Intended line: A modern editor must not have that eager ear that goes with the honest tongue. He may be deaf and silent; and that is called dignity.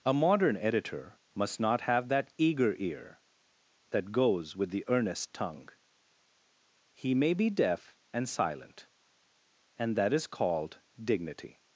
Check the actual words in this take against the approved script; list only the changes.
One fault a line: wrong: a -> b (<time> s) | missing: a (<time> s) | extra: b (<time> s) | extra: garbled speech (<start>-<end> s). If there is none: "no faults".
wrong: honest -> earnest (4.9 s)